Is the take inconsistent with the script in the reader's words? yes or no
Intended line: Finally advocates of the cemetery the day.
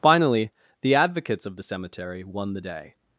yes